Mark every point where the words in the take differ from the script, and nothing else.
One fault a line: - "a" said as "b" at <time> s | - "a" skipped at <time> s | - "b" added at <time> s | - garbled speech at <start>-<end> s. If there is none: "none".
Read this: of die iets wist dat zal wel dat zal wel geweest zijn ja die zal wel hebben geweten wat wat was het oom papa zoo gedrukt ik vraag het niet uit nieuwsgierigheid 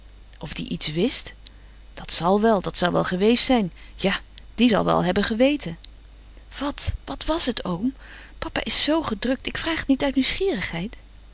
- "is" added at 8.6 s